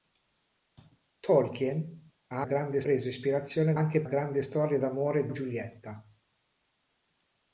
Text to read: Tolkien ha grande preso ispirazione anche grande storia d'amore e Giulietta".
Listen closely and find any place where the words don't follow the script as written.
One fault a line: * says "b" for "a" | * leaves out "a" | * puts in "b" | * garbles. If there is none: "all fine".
all fine